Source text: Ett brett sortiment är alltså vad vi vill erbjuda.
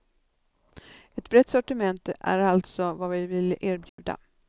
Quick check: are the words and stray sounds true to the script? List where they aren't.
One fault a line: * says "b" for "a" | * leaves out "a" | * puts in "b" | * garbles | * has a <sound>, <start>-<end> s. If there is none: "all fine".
* has a dropout, 3.9-4.0 s